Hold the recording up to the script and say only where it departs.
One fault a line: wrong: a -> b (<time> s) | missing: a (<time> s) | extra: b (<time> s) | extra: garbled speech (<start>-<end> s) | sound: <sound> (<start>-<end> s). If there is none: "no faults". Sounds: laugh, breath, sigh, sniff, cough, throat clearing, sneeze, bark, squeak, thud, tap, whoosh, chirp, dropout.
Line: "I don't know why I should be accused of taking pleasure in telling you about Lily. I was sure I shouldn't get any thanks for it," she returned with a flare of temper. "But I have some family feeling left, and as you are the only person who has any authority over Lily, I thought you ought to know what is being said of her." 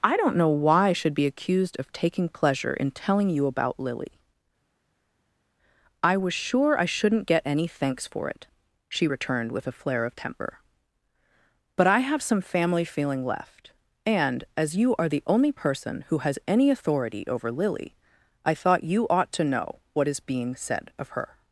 no faults